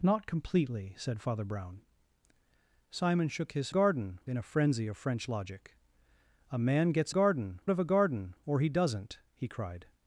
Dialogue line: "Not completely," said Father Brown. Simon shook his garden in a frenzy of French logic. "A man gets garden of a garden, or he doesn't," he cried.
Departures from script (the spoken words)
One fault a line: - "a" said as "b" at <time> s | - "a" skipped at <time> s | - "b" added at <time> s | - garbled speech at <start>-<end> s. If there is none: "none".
none